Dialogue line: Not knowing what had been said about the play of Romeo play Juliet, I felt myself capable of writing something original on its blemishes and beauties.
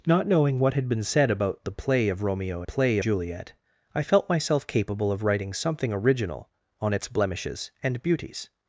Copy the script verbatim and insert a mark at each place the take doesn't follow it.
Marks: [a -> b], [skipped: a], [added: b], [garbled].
Not knowing what had been said about the play of Romeo play Juliet, I felt myself capable of writing something original on its blemishes and beauties.